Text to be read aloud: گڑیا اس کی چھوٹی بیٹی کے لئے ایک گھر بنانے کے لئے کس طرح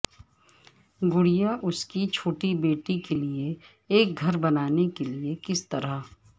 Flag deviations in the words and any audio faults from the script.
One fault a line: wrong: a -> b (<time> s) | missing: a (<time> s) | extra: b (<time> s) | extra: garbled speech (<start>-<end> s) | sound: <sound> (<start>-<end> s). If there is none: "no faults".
no faults